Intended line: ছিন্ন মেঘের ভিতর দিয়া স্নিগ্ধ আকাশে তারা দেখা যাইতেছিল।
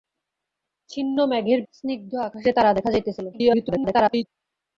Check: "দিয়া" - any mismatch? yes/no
yes